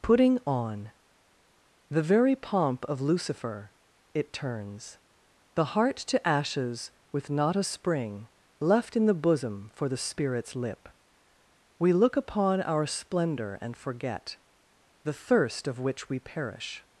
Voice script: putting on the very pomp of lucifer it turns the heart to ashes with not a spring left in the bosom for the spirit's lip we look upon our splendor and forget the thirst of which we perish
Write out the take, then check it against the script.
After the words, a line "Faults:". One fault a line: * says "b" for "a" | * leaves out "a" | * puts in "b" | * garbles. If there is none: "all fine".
putting on the very pomp of lucifer it turns the heart to ashes with not a spring left in the bosom for the spirit's lip we look upon our splendor and forget the thirst of which we perish
Faults:
all fine